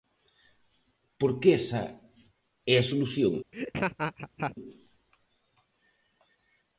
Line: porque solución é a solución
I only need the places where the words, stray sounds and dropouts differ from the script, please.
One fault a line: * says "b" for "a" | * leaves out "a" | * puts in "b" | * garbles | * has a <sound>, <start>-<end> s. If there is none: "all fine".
* says "esa" for "solución"
* has a laugh, 3.5-4.6 s